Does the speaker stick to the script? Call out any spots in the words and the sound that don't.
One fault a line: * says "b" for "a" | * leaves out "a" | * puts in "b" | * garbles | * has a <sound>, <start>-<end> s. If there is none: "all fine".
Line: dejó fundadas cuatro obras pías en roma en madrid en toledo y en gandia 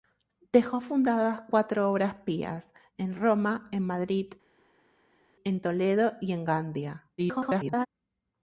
* garbles